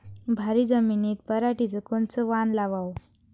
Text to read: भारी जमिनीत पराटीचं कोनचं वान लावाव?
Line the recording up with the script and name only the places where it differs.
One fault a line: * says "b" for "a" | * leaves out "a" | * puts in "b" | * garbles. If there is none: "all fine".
all fine